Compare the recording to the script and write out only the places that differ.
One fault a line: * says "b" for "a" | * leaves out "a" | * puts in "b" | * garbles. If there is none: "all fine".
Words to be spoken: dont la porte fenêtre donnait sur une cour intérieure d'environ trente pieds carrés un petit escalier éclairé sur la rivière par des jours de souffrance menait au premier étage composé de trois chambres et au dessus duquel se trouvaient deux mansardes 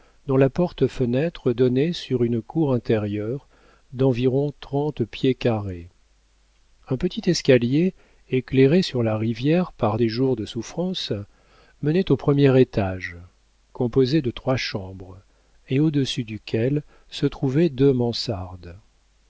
all fine